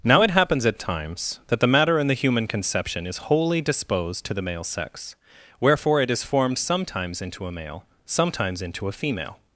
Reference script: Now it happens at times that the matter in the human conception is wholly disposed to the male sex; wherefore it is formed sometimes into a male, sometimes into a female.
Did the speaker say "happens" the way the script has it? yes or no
yes